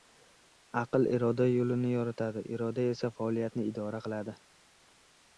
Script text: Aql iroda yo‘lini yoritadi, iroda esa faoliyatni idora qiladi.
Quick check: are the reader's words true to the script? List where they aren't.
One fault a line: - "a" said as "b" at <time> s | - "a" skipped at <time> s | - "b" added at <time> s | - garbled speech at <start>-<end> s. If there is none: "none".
none